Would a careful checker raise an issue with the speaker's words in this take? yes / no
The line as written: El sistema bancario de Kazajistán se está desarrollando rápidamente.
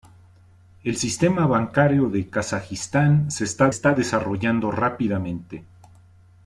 yes